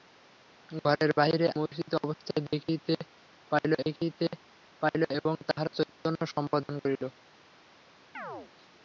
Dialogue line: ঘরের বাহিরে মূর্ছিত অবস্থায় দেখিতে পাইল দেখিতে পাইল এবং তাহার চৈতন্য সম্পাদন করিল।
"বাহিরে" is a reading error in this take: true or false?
false